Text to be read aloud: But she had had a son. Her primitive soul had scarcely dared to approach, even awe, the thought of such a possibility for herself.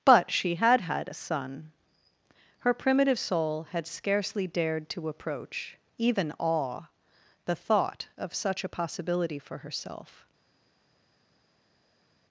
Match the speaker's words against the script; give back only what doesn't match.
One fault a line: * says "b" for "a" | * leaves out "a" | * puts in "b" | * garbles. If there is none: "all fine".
all fine